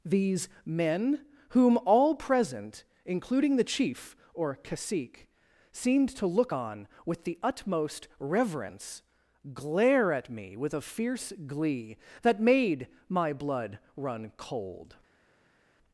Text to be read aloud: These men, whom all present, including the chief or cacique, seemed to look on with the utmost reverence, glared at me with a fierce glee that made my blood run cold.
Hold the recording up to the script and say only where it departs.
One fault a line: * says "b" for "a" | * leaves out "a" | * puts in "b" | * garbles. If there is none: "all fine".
* says "glare" for "glared"